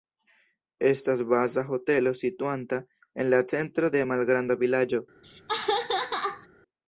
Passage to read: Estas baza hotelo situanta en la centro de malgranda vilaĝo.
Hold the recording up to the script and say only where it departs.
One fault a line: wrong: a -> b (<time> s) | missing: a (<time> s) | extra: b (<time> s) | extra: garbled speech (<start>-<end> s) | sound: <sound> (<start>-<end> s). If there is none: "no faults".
sound: laugh (5.2-6.5 s)